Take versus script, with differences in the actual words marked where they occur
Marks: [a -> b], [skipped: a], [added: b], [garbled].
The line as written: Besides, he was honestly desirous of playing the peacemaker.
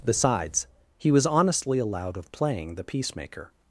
Besides, he was honestly [desirous -> allowed] of playing the peacemaker.